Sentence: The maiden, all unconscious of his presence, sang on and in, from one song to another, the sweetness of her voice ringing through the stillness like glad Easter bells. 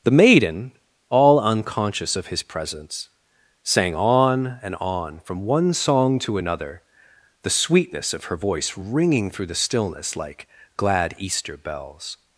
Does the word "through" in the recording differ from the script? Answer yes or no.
no